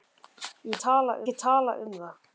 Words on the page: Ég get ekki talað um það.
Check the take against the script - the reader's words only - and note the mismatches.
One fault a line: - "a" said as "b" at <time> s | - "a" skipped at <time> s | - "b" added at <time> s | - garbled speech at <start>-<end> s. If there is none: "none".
- "get" said as "talað" at 0.9 s